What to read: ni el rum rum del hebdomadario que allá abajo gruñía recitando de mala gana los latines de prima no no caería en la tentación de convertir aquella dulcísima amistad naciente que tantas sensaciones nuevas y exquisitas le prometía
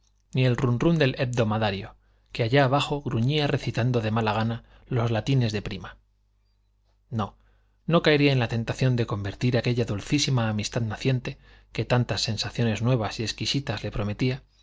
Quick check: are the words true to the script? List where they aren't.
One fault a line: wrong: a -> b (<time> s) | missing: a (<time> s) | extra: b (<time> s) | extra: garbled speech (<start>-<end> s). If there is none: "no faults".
no faults